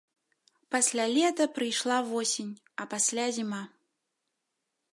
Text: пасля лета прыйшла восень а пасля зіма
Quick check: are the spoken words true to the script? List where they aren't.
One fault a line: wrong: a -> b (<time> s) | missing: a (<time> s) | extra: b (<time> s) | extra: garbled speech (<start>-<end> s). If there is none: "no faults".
no faults